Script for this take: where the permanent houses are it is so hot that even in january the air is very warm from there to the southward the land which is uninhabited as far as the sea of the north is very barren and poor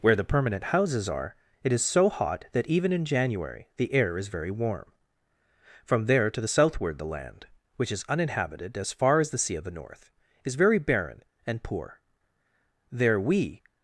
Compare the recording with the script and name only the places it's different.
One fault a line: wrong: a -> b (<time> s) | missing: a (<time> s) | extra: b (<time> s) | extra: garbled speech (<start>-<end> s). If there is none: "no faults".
extra: there we (12.9 s)